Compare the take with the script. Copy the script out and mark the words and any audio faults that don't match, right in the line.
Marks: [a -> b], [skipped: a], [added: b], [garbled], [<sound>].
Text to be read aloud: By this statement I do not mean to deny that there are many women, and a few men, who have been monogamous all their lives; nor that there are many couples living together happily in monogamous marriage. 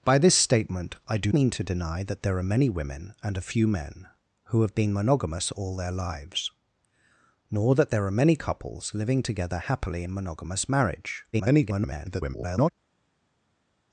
By this statement I do [skipped: not] mean to deny that there are many women, and a few men, who have been monogamous all their lives; nor that there are many couples living together happily in monogamous marriage. [garbled]